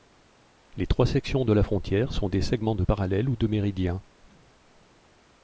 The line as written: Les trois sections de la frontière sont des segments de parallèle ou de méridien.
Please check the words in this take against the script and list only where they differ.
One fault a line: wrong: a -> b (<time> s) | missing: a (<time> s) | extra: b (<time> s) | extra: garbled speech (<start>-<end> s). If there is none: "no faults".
no faults